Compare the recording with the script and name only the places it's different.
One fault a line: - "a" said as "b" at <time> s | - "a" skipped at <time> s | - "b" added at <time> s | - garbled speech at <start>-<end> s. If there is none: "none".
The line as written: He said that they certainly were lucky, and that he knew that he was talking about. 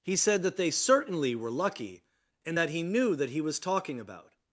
none